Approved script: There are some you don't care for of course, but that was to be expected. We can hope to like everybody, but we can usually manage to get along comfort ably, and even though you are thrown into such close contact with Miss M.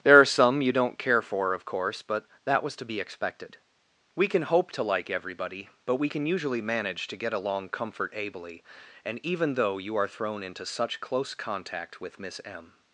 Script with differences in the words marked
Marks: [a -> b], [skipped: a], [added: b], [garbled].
There are some you don't care for of course, but that was to be expected. We can hope to like everybody, but we can usually manage to get along comfort ably, and even though you are thrown into such close contact with Miss M.